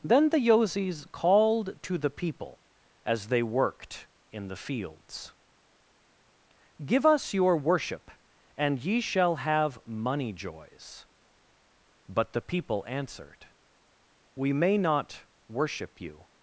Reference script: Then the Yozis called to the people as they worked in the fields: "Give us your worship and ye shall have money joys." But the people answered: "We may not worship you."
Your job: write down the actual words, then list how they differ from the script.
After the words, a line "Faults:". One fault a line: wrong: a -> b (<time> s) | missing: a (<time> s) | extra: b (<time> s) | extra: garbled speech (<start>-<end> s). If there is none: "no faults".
Then the Yozis called to the people as they worked in the fields: "Give us your worship and ye shall have money joys." But the people answered: "We may not worship you."
Faults:
no faults